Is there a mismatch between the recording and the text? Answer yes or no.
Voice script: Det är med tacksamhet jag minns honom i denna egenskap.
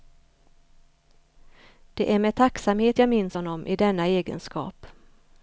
no